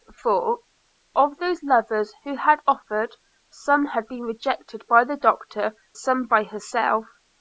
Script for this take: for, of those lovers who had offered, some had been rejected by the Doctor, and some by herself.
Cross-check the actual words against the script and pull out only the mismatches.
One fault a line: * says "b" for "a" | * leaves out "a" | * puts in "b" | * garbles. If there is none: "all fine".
* leaves out "and"